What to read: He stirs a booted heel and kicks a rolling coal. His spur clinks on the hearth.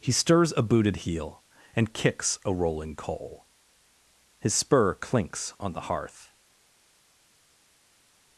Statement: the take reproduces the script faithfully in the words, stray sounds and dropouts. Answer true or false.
true